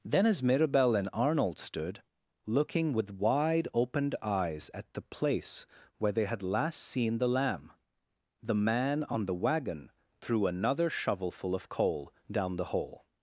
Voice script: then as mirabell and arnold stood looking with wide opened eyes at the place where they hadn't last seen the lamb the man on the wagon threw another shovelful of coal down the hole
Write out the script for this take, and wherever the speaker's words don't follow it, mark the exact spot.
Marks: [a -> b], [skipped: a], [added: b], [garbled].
then as mirabell and arnold stood looking with wide opened eyes at the place where they [hadn't -> had] last seen the lamb the man on the wagon threw another shovelful of coal down the hole